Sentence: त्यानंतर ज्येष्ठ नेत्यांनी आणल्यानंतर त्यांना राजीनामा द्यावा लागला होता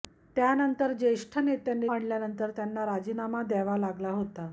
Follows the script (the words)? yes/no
yes